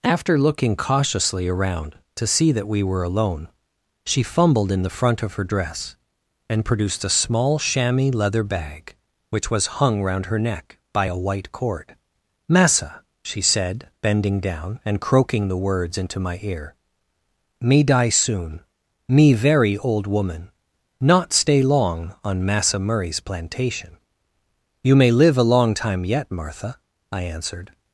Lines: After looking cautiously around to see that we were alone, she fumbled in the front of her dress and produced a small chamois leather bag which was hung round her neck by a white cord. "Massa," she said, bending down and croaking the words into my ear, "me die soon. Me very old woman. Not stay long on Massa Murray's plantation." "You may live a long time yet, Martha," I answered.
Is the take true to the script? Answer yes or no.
yes